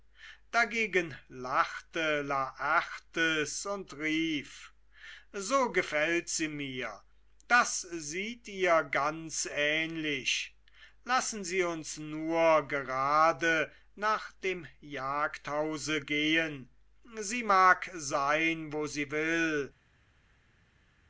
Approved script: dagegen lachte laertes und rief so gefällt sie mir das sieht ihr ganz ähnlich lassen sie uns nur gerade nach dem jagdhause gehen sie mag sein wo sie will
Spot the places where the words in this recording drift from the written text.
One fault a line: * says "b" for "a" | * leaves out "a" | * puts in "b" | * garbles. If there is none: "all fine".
all fine